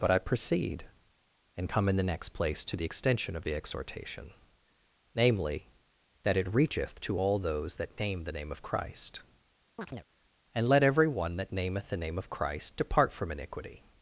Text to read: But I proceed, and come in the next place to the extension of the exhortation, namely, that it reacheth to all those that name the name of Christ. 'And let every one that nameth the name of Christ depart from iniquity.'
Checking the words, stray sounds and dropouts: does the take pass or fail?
fail